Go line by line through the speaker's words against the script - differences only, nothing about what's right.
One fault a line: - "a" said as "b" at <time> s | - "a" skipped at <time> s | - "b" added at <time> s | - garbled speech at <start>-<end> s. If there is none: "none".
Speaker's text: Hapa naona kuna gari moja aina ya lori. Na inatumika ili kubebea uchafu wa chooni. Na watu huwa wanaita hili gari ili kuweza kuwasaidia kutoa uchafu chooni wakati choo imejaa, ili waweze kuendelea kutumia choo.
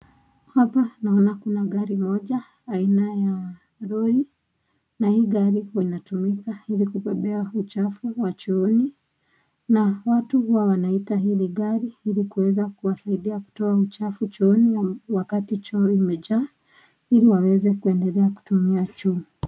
- "hii gari huwa" added at 5.1 s